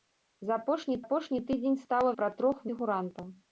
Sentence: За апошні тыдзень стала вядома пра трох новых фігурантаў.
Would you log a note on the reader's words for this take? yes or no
yes